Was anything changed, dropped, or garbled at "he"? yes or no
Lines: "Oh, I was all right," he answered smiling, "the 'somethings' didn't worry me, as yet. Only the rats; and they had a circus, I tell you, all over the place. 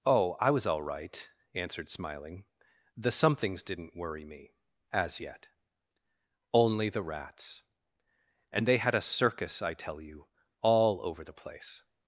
yes